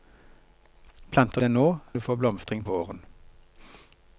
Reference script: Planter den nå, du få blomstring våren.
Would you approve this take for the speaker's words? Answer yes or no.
yes